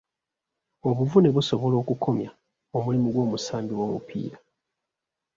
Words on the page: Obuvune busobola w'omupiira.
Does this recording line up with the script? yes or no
no